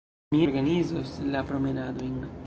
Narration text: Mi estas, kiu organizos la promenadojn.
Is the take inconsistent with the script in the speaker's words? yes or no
yes